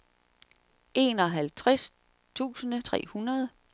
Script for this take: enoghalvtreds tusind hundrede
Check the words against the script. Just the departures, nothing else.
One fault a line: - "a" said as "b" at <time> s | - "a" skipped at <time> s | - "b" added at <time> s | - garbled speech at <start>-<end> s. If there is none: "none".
- "tre" added at 2.8 s